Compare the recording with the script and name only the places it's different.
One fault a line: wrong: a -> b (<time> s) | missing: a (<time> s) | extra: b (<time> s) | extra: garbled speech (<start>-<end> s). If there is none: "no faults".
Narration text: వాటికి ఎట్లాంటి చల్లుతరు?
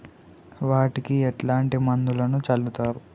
extra: మందులను (1.9 s)